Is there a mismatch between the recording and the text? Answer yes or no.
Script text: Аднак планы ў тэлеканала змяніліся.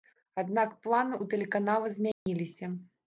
no